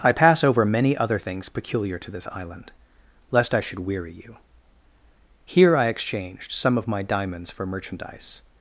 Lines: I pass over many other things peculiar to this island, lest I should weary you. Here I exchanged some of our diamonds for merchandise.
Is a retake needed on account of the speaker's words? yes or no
yes